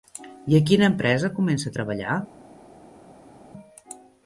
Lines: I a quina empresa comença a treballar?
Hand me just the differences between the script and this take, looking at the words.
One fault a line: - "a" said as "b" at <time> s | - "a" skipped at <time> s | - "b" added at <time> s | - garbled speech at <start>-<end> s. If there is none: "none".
none